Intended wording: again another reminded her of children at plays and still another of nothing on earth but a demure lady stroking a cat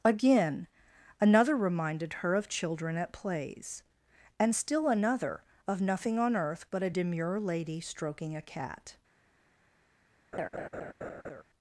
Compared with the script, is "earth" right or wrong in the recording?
right